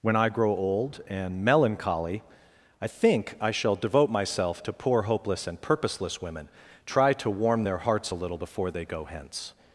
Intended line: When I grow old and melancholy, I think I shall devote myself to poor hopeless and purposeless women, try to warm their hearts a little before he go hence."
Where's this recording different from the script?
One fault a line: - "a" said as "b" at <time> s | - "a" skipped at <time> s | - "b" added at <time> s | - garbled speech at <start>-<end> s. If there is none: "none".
- "he" said as "they" at 8.7 s